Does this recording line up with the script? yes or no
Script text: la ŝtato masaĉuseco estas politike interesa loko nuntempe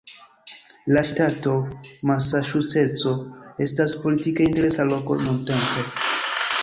yes